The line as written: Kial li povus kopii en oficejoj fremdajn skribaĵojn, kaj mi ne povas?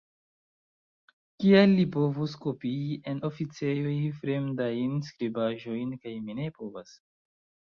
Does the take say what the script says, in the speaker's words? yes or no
yes